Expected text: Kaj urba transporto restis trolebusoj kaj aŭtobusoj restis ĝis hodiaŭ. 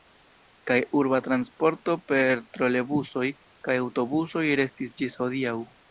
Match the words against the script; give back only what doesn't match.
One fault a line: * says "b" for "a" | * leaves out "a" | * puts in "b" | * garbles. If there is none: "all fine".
* says "per" for "restis"